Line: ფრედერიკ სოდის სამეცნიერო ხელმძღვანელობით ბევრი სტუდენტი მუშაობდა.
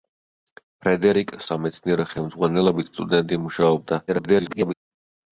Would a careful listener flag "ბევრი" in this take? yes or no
yes